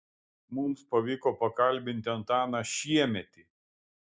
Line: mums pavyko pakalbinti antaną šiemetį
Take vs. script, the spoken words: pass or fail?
pass